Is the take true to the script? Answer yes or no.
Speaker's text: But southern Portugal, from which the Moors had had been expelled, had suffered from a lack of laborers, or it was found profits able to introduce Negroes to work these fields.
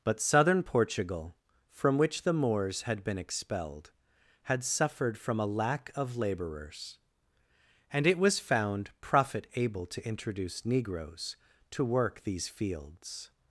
no